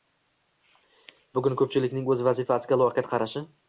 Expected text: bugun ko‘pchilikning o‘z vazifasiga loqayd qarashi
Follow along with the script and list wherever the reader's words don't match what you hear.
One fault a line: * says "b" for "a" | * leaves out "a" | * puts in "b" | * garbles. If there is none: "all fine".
all fine